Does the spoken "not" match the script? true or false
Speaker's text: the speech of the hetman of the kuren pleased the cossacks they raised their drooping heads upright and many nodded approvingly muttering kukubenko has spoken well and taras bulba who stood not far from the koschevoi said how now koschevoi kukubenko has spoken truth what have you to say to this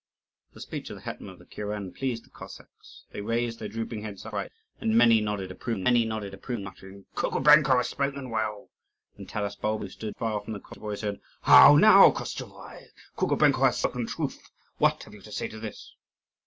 false